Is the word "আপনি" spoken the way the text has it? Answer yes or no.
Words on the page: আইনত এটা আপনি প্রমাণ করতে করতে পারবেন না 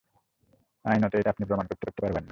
yes